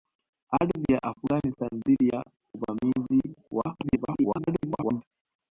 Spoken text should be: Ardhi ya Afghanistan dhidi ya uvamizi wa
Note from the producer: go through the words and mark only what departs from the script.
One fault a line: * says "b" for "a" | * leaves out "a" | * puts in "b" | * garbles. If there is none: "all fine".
* garbles